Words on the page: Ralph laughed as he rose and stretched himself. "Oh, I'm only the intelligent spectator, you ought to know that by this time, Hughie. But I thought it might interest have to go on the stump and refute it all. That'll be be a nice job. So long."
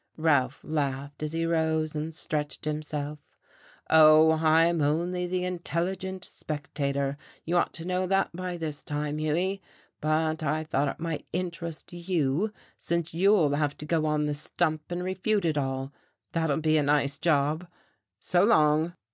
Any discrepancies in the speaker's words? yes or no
yes